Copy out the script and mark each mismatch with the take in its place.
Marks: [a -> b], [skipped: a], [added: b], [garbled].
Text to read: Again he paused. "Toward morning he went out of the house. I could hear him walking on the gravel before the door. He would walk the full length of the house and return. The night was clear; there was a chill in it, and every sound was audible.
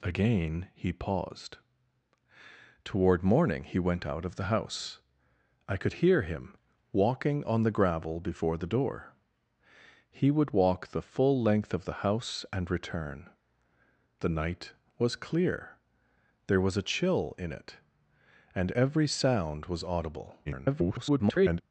Again he paused. "Toward morning he went out of the house. I could hear him walking on the gravel before the door. He would walk the full length of the house and return. The night was clear; there was a chill in it, and every sound was audible. [garbled]